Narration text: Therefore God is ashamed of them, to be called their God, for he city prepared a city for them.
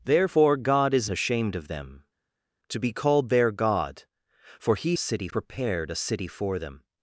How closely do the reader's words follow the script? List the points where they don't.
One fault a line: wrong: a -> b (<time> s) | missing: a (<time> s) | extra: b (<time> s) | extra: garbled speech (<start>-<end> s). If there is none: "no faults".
no faults